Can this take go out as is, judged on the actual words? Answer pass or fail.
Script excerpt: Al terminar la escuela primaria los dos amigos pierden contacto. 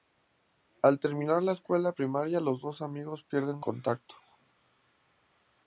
pass